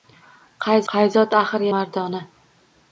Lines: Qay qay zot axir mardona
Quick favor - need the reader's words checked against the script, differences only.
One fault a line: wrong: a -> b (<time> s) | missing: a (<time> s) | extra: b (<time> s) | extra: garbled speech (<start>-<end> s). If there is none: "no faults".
no faults